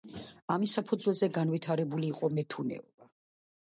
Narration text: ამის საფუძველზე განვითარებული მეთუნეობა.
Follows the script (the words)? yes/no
no